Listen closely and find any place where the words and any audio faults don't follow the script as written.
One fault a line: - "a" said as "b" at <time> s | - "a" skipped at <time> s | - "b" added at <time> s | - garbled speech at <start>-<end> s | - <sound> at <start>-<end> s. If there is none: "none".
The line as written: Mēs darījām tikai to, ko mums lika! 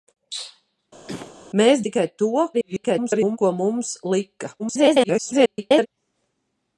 - cough at 1.1-1.3 s
- "darījām" skipped at 1.8 s
- garbled speech at 2.5-3.4 s
- garbled speech at 4.6-5.9 s